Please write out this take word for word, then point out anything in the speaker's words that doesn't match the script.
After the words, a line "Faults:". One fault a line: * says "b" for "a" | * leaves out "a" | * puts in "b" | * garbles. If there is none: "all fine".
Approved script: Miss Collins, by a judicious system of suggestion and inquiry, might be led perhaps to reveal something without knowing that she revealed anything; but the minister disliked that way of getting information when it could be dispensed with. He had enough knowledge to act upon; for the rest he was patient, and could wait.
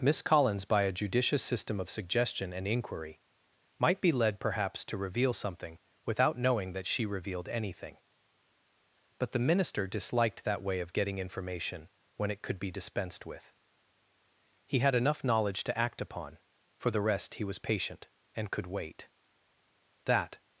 Miss Collins, by a judicious system of suggestion and inquiry, might be led perhaps to reveal something without knowing that she revealed anything; but the minister disliked that way of getting information when it could be dispensed with. He had enough knowledge to act upon; for the rest he was patient, and could wait. That
Faults:
* puts in "That"